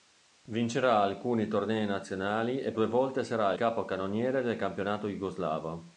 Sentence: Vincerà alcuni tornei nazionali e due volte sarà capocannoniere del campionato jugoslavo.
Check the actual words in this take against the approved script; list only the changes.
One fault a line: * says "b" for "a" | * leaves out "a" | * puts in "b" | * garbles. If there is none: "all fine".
all fine